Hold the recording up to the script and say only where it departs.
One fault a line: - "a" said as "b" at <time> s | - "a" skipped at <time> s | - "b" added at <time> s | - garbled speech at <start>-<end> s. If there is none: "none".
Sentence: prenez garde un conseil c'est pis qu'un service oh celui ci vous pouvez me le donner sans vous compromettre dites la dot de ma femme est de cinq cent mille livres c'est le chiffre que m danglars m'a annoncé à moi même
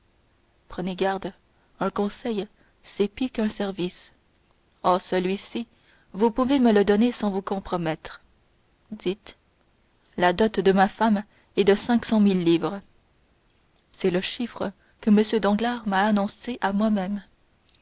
none